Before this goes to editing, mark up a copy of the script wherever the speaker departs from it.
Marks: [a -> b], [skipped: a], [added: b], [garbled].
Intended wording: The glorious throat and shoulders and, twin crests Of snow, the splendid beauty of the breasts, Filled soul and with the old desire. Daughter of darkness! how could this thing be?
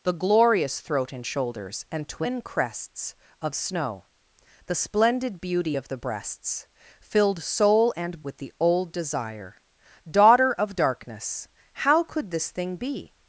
The glorious throat and shoulders and, twin crests Of snow, the splendid beauty of the breasts, Filled soul and with the old desire. Daughter of darkness! how could this thing be?